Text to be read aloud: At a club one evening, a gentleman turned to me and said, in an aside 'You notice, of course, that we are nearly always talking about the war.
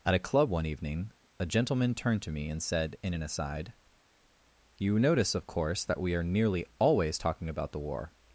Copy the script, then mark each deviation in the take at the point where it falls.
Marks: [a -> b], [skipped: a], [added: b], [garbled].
At a club one evening, a gentleman turned to me and said, in an aside 'You notice, of course, that we are nearly always talking about the war.